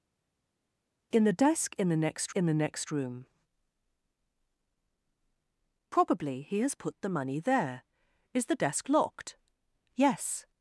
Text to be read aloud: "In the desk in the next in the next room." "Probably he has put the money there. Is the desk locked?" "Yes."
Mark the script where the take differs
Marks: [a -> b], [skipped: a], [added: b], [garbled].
"In the desk in the next in the next room." "Probably he has put the money there. Is the desk locked?" "Yes."